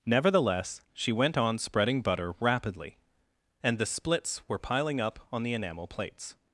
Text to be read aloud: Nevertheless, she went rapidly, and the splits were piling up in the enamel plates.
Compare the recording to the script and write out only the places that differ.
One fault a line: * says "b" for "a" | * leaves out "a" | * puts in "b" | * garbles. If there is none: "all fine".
* puts in "on spreading butter"
* says "on" for "in"